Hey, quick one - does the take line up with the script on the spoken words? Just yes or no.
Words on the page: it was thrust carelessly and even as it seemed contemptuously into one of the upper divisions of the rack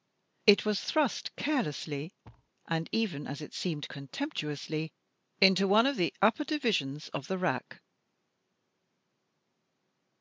yes